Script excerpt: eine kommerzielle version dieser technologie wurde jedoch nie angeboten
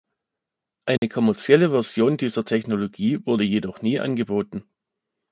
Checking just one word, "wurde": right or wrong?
right